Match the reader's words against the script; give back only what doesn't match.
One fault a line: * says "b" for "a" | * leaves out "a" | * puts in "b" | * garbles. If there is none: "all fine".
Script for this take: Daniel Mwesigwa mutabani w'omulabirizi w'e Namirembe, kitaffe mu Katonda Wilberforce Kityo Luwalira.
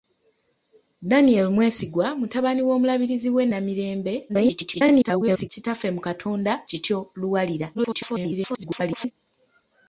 * garbles
* leaves out "Wilberforce"
* garbles